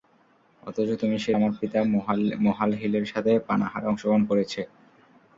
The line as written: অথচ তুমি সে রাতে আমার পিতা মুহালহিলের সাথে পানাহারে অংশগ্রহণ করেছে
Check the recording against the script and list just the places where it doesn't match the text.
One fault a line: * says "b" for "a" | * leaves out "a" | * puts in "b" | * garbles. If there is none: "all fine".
* leaves out "রাতে"